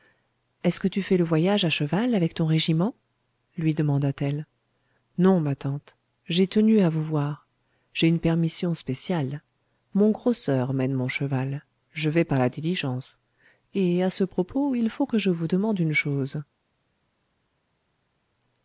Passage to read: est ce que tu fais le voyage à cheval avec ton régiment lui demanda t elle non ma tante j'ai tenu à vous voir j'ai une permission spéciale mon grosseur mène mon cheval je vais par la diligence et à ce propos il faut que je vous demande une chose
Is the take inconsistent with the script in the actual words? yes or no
no